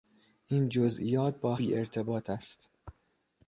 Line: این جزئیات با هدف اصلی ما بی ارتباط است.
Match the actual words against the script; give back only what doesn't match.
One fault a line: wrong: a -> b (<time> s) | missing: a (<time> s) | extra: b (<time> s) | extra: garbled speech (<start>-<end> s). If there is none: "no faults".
missing: هدف اصلی ما (1.6 s)